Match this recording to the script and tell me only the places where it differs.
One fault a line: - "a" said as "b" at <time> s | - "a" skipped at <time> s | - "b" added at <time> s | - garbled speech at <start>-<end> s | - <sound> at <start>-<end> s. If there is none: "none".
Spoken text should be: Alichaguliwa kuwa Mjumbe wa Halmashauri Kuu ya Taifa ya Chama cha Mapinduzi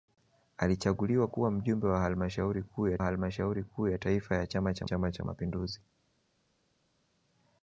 - "Halmashauri Kuu ya" added at 3.0 s
- "Chama cha" added at 4.8 s